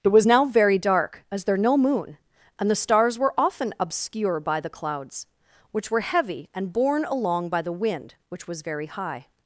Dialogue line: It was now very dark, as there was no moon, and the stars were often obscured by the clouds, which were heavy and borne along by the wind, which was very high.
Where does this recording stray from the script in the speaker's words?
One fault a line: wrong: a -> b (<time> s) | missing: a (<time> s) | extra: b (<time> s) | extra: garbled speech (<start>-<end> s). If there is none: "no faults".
missing: was (1.6 s)
wrong: obscured -> obscure (3.8 s)